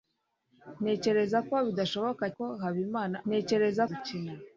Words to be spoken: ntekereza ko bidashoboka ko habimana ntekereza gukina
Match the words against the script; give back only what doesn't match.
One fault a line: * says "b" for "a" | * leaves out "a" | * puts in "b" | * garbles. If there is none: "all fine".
all fine